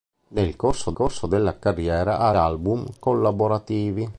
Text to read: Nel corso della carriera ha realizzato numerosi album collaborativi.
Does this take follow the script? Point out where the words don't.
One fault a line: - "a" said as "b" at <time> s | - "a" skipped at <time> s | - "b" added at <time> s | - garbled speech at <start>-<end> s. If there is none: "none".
- "corso" added at 0.9 s
- "realizzato numerosi" skipped at 2.3 s